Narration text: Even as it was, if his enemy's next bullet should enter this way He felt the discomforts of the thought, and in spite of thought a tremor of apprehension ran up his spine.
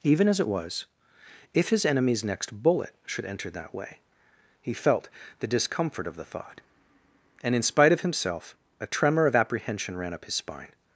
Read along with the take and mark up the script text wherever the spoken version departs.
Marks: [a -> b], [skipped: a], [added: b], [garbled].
Even as it was, if his enemy's next bullet should enter [this -> that] way He felt the [discomforts -> discomfort] of the thought, and in spite of [thought -> himself] a tremor of apprehension ran up his spine.